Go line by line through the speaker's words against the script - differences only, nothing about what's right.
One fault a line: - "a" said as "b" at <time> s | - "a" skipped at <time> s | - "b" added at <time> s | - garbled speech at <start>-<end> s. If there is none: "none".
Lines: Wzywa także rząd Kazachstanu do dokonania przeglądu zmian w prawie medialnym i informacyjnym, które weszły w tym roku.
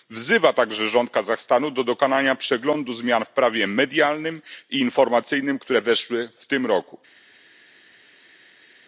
none